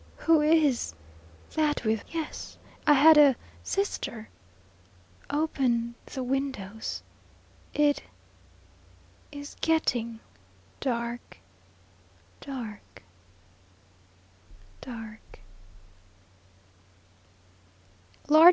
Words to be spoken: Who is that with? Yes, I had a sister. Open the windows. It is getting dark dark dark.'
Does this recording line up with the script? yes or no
yes